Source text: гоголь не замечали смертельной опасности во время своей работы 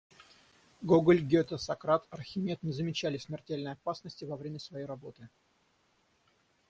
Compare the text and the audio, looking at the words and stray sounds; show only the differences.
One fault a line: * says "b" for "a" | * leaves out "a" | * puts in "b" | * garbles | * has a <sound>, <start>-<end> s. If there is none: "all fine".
* puts in "гете сократ архимед"